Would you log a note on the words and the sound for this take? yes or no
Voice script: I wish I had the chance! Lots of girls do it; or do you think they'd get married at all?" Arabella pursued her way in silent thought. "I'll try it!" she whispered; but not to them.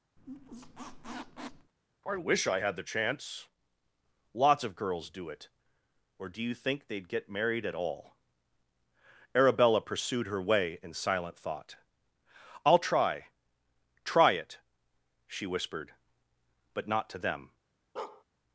yes